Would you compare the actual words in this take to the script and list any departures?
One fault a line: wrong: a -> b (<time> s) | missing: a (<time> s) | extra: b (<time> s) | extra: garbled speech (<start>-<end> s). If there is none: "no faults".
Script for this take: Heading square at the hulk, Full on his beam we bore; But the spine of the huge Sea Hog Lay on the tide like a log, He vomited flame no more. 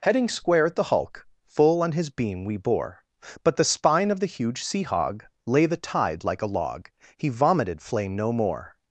missing: on (5.7 s)